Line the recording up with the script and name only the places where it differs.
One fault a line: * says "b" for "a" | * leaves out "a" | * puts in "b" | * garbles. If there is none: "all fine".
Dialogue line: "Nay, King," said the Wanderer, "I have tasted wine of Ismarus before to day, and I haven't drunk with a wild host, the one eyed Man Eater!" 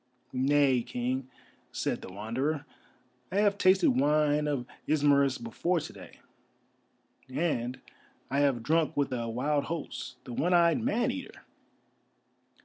* says "have" for "haven't"